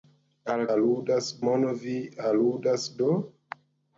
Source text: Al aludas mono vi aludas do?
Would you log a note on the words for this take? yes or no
no